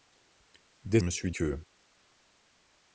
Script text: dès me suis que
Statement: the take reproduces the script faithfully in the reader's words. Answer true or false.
true